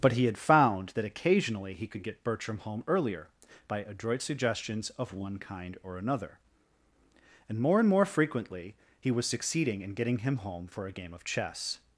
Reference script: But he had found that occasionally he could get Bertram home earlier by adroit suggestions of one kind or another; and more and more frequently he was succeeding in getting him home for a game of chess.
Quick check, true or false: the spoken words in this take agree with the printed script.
true